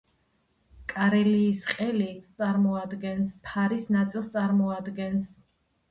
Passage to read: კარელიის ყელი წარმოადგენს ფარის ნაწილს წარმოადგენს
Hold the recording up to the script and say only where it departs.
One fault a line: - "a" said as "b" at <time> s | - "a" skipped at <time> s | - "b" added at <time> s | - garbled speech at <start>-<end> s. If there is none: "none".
none